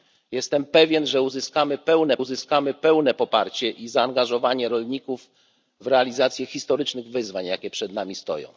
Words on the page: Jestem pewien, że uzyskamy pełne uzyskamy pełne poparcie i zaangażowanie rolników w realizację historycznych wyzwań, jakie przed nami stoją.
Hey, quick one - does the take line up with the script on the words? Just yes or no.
yes